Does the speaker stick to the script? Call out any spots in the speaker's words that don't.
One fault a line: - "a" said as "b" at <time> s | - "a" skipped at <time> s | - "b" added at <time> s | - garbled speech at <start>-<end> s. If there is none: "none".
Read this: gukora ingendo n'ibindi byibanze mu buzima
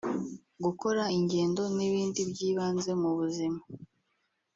none